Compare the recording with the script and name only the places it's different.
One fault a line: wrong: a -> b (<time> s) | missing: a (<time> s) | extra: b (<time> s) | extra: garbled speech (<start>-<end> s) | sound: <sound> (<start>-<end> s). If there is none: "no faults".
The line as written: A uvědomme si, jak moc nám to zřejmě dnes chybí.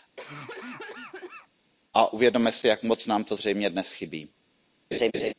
sound: cough (0.2-1.5 s)
sound: laugh (4.9-5.3 s)